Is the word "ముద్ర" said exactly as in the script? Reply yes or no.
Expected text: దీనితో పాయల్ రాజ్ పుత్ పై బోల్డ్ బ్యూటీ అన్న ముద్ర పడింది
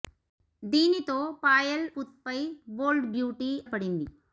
no